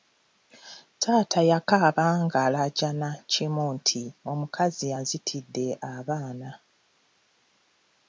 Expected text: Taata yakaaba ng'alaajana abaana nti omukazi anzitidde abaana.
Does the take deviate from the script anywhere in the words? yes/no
yes